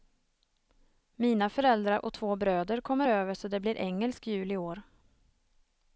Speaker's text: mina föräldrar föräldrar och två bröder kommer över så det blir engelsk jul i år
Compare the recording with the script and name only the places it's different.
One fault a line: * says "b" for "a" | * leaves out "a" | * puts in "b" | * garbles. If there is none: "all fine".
* leaves out "föräldrar"